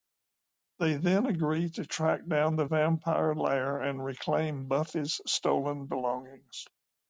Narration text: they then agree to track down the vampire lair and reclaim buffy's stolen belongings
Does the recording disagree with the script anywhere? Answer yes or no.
no